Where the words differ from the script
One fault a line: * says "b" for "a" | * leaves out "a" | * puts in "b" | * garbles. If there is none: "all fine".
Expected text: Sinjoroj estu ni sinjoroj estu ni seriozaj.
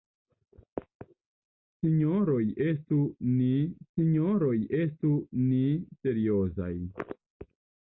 all fine